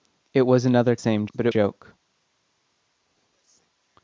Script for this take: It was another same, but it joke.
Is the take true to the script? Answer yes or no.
yes